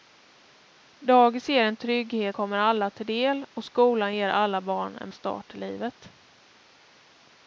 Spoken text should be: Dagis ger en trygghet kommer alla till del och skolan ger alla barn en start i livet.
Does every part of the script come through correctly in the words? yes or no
yes